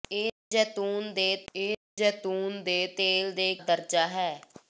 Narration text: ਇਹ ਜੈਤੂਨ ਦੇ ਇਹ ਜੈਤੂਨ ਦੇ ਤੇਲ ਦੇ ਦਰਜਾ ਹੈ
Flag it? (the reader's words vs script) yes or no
no